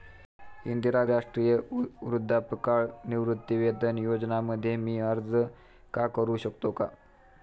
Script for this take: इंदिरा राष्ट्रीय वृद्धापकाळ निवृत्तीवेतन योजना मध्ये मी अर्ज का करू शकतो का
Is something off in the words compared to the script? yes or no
no